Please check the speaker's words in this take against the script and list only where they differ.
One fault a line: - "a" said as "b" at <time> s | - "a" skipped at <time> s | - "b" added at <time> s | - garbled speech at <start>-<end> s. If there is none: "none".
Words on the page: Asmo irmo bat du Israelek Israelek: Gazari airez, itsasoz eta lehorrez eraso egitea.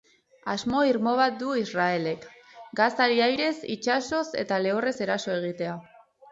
- "Israelek" skipped at 2.2 s